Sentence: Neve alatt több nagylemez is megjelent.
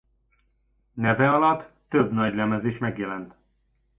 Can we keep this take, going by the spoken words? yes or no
yes